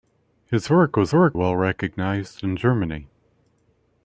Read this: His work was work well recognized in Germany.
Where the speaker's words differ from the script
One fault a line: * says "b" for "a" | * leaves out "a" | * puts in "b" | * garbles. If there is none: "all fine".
all fine